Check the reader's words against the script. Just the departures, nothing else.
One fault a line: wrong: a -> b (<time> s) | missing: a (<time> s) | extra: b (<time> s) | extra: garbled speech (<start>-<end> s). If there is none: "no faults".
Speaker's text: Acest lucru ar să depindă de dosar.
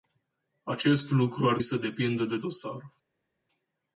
no faults